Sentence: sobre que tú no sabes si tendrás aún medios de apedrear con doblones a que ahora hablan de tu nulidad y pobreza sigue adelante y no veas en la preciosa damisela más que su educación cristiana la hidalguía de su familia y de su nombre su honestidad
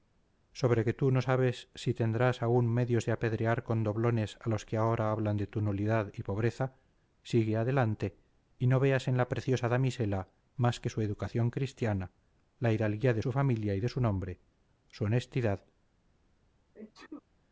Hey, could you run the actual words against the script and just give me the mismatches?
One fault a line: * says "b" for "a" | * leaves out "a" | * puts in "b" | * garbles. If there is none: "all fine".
* puts in "los"